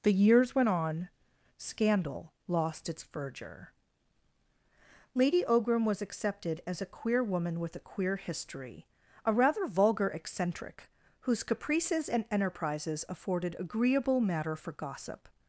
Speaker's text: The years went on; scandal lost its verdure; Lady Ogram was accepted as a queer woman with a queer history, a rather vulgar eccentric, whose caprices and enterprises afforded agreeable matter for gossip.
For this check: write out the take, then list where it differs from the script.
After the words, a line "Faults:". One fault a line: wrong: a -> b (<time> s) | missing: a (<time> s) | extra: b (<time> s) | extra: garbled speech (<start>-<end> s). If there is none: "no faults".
The years went on; scandal lost its verdure; Lady Ogram was accepted as a queer woman with a queer history, a rather vulgar eccentric, whose caprices and enterprises afforded agreeable matter for gossip.
Faults:
no faults